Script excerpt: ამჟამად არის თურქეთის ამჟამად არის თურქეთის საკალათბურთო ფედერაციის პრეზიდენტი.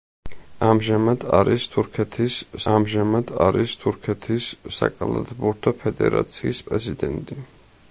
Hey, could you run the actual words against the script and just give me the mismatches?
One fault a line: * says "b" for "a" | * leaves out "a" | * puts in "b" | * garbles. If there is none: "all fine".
all fine